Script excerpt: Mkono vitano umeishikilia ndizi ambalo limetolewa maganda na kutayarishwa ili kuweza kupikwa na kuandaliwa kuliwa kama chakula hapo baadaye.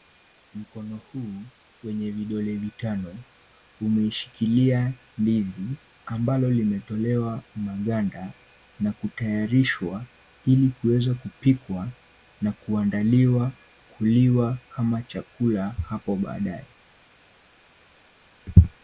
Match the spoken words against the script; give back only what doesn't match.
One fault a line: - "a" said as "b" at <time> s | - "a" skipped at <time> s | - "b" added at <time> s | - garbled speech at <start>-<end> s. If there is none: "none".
- "huu wenye vidole" added at 1.0 s